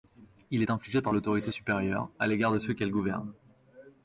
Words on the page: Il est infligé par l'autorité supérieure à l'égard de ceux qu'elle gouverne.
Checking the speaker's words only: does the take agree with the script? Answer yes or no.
yes